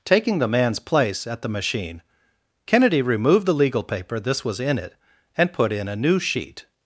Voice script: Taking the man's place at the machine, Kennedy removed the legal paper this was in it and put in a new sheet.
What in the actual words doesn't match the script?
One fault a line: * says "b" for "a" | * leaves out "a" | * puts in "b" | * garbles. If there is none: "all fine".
all fine